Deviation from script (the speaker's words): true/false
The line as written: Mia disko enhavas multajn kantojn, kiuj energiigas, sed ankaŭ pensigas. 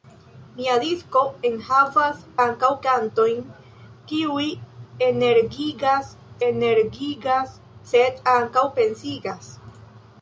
true